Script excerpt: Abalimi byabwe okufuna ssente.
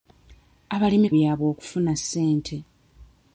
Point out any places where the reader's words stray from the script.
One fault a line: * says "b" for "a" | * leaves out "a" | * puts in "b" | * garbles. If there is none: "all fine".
all fine